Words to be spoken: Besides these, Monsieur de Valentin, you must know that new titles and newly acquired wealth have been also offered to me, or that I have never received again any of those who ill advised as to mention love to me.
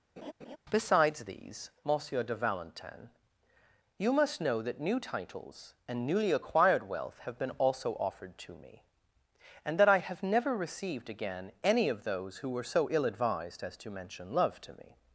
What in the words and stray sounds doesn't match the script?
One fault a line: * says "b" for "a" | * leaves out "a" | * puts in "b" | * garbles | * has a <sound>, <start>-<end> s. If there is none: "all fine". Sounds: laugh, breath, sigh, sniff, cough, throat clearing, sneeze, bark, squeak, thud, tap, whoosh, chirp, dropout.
* has a laugh, 0.2-0.6 s
* says "and" for "or"
* puts in "were so"